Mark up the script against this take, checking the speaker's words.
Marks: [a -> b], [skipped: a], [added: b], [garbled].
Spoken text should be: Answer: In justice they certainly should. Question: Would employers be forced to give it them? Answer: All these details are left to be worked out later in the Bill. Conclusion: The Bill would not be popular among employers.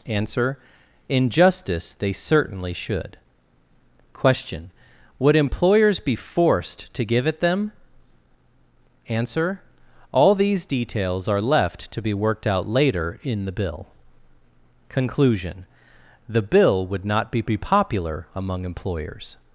Answer: In justice they certainly should. Question: Would employers be forced to give it them? Answer: All these details are left to be worked out later in the Bill. Conclusion: The Bill would not be [added: be] popular among employers.